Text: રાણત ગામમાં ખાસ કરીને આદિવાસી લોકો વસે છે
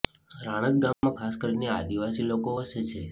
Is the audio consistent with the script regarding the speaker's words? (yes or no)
yes